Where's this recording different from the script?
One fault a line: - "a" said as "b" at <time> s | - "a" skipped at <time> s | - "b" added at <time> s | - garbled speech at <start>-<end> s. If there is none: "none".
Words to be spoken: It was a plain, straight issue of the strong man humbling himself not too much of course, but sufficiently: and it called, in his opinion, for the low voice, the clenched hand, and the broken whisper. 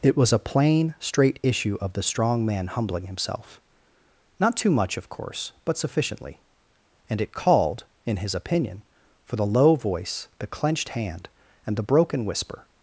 none